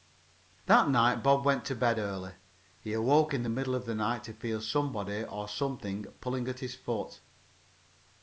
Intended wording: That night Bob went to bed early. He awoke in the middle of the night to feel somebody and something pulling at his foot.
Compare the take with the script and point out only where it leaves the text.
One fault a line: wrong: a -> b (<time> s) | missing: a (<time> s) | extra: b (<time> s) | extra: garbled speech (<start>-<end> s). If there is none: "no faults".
wrong: and -> or (5.2 s)